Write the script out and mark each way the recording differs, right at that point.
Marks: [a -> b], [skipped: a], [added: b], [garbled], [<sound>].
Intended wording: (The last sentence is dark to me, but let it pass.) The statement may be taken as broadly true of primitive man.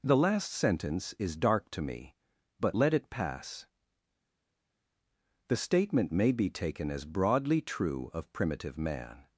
(The last sentence is dark to me, but let it pass.) The statement may be taken as broadly true of primitive man.